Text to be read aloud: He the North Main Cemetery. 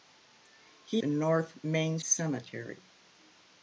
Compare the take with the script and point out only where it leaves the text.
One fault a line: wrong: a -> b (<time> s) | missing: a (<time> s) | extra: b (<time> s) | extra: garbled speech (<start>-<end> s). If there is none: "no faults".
no faults